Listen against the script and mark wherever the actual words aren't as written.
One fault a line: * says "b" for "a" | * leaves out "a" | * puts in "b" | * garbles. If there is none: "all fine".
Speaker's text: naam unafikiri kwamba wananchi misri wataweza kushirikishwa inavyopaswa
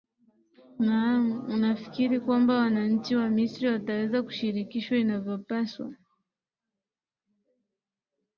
* puts in "wa"